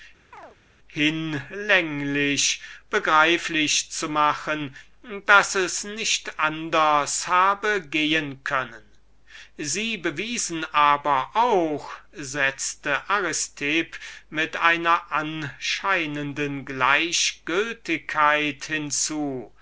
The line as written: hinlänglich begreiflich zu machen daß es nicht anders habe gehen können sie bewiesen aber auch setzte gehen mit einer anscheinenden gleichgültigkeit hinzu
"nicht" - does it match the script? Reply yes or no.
yes